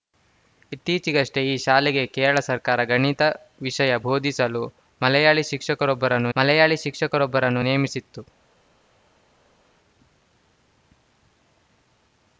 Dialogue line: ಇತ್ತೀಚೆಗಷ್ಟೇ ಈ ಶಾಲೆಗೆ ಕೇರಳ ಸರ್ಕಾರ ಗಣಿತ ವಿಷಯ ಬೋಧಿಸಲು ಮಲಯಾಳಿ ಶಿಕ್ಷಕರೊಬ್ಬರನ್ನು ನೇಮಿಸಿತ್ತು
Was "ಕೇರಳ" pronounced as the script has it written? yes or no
yes